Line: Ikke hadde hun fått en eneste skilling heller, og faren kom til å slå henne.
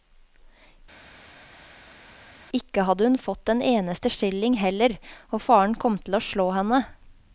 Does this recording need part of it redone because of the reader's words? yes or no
no